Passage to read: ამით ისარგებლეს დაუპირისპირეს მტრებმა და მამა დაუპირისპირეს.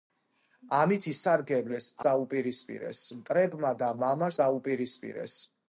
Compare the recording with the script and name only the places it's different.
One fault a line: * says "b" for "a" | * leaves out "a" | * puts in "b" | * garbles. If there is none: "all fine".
all fine